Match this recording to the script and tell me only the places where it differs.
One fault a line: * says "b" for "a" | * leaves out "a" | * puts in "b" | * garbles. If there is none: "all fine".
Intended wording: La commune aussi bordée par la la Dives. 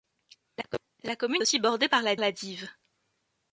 all fine